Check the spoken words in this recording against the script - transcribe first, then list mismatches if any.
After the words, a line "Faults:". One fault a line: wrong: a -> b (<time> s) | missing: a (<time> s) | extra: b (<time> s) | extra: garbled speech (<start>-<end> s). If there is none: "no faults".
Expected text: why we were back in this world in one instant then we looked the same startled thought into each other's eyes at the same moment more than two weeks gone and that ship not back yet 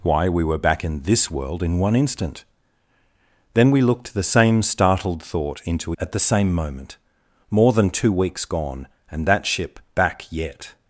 why we were back in this world in one instant then we looked the same startled thought into at the same moment more than two weeks gone and that ship back yet
Faults:
missing: each other's eyes (5.9 s)
missing: not (9.8 s)